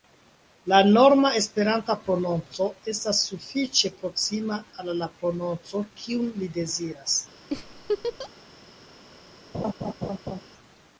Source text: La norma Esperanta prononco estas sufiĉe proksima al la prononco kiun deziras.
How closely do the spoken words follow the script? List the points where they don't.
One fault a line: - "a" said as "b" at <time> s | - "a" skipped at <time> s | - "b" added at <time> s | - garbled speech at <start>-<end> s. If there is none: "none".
- "li" added at 6.4 s